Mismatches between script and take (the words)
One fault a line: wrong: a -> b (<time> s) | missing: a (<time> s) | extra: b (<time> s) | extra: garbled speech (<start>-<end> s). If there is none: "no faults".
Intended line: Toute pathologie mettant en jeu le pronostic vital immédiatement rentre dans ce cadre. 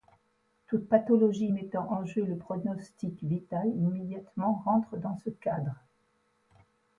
no faults